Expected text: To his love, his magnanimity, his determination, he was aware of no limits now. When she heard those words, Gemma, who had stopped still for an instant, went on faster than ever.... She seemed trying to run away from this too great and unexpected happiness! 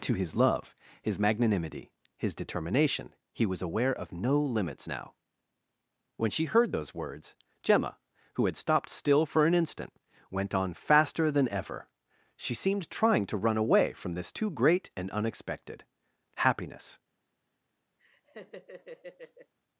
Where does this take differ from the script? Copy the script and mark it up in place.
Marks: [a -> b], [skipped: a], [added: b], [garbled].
To his love, his magnanimity, his determination, he was aware of no limits now. When she heard those words, Gemma, who had stopped still for an instant, went on faster than ever.... She seemed trying to run away from this too great and unexpected happiness!